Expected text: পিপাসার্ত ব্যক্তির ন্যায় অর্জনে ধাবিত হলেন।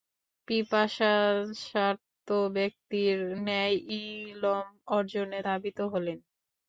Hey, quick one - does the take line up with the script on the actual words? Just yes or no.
no